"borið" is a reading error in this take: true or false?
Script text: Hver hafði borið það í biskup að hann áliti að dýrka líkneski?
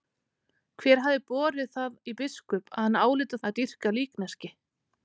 false